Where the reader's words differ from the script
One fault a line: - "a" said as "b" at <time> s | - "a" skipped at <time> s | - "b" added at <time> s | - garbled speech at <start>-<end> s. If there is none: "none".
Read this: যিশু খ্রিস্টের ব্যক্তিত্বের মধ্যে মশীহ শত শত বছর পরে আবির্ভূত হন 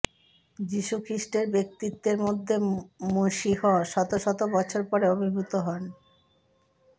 none